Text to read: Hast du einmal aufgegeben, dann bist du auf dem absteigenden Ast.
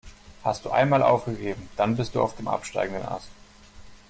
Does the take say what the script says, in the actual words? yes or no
yes